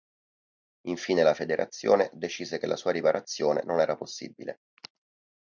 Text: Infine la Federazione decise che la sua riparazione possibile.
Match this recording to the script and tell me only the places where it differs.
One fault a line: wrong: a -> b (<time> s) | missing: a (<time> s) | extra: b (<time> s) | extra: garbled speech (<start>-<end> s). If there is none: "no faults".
extra: non era (3.6 s)